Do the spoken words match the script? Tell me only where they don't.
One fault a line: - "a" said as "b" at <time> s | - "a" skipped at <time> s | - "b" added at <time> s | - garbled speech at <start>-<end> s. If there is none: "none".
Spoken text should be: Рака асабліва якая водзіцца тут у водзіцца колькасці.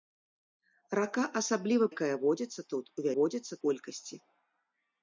none